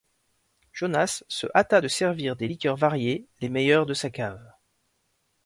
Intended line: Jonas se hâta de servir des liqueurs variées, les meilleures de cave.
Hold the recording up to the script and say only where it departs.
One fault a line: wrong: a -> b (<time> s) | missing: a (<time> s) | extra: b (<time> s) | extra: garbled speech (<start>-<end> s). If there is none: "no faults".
extra: sa (3.9 s)